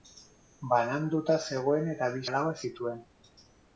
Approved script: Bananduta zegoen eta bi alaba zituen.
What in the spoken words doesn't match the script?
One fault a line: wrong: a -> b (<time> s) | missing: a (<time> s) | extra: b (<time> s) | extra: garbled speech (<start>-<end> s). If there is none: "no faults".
no faults